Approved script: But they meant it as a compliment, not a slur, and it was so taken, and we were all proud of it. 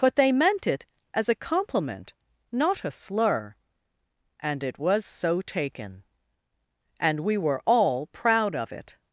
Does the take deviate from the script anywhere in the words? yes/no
no